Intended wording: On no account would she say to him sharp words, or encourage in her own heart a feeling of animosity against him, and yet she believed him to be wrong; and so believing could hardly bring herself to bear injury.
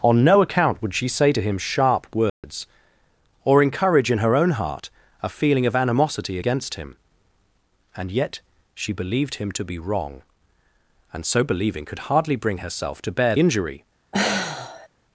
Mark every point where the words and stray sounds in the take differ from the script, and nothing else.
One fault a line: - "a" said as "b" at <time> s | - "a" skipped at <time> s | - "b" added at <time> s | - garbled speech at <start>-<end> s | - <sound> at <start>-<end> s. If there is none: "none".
- dropout at 2.3-2.4 s
- sigh at 14.1-14.9 s